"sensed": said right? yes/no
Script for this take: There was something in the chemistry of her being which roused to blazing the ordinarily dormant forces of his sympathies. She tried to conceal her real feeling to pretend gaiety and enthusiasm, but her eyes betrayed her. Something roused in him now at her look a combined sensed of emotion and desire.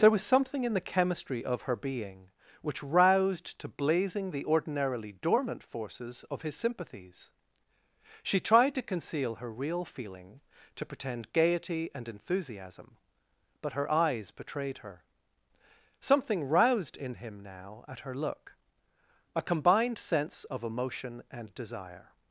no